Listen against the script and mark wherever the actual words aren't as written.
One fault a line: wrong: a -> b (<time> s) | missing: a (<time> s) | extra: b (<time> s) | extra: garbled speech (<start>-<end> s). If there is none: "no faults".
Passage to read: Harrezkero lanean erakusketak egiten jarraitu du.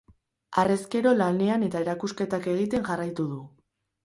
extra: eta (1.7 s)